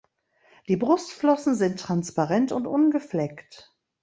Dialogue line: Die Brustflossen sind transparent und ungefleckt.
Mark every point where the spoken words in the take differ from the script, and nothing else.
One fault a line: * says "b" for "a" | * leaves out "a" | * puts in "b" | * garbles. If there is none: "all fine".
all fine